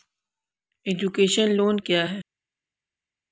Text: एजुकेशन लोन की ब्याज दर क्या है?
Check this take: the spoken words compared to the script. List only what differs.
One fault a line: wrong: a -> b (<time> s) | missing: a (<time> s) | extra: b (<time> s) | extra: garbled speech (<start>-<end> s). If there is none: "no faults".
missing: की ब्याज दर (1.8 s)